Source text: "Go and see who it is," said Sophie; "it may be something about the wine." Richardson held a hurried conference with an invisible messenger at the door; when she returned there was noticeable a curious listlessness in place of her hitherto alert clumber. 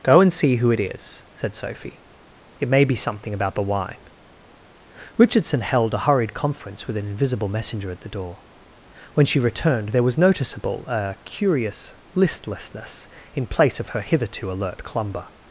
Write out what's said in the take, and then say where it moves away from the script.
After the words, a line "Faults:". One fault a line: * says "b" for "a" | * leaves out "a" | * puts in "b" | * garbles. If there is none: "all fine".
"Go and see who it is," said Sophie; "it may be something about the wine." Richardson held a hurried conference with an invisible messenger at the door; when she returned there was noticeable a curious listlessness in place of her hitherto alert clumber.
Faults:
all fine